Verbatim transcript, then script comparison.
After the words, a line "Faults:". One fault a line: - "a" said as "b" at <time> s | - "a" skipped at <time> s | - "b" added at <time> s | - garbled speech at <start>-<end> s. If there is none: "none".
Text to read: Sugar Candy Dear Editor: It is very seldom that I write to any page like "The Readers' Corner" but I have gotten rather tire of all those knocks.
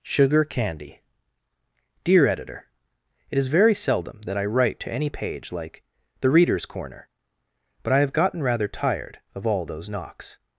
Sugar Candy Dear Editor: It is very seldom that I write to any page like "The Readers' Corner" but I have gotten rather tired of all those knocks.
Faults:
- "tire" said as "tired" at 8.7 s